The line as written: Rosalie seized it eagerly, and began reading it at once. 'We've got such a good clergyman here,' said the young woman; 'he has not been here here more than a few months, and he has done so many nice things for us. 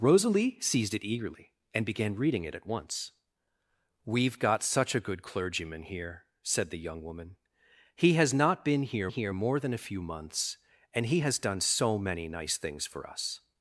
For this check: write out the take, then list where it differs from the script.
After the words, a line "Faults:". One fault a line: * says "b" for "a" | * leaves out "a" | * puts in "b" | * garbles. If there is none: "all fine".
Rosalie seized it eagerly, and began reading it at once. 'We've got such a good clergyman here,' said the young woman; 'he has not been here here more than a few months, and he has done so many nice things for us.
Faults:
all fine